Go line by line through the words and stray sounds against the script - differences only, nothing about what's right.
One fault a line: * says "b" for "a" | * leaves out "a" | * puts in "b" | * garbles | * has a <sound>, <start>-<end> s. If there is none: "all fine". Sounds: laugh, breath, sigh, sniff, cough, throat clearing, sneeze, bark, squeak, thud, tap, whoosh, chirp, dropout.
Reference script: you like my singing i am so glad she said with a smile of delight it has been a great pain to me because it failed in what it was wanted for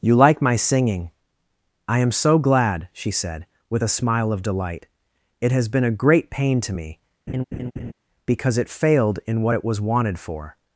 * has a laugh, 7.3-7.9 s